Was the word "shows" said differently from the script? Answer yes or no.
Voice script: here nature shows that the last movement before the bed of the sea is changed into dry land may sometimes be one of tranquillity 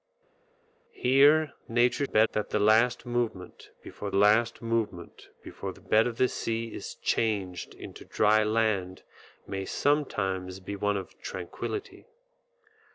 yes